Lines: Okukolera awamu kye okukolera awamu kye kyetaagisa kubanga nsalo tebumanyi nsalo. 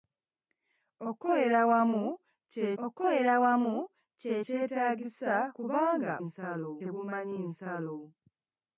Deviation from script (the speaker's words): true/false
false